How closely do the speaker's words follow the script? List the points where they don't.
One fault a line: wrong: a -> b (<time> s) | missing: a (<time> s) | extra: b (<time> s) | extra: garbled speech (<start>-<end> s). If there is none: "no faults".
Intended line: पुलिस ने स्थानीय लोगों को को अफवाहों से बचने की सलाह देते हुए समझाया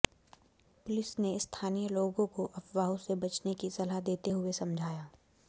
missing: को (2.5 s)